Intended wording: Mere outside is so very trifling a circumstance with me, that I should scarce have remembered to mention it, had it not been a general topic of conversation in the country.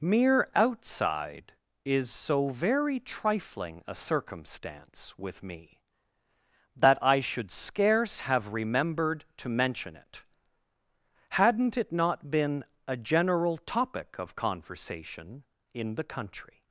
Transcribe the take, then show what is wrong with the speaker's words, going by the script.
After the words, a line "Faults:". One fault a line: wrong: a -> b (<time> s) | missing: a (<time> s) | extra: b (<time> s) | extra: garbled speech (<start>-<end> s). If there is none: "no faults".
Mere outside is so very trifling a circumstance with me, that I should scarce have remembered to mention it, hadn't it not been a general topic of conversation in the country.
Faults:
wrong: had -> hadn't (11.3 s)